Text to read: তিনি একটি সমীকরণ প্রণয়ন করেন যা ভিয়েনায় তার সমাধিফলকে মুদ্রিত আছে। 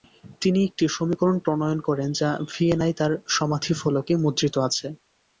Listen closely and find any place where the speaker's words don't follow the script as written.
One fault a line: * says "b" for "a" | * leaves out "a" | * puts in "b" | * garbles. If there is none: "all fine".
all fine